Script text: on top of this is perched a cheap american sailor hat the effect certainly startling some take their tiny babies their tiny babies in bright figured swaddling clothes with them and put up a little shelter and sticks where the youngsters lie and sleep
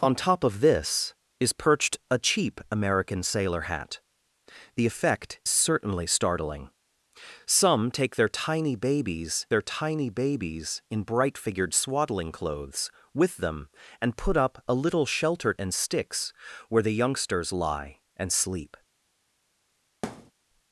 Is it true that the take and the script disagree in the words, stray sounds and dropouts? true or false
true